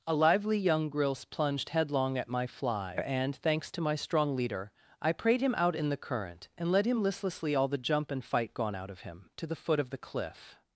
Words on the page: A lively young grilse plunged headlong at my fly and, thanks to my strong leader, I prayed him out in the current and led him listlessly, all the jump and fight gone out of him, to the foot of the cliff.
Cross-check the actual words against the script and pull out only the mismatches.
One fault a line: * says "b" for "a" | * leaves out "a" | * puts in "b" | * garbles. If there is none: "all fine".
all fine